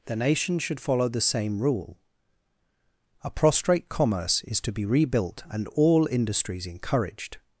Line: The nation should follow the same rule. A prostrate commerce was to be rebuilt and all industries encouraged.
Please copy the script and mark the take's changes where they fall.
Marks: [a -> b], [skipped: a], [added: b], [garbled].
The nation should follow the same rule. A prostrate commerce [was -> is] to be rebuilt and all industries encouraged.